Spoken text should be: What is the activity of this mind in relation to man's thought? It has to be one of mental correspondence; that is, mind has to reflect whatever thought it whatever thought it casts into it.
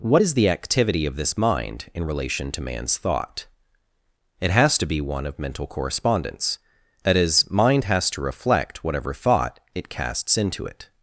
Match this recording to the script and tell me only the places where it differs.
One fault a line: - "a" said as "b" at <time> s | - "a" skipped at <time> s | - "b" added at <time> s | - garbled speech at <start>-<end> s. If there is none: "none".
- "whatever thought it" skipped at 9.9 s